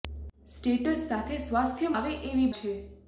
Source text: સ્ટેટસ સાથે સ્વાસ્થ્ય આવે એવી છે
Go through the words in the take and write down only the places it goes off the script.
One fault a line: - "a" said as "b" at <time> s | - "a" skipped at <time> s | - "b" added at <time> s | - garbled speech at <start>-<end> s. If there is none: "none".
none